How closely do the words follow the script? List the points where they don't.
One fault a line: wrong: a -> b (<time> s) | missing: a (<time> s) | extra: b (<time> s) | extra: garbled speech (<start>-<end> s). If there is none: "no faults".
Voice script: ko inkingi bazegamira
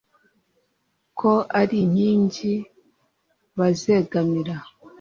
extra: ari (1.6 s)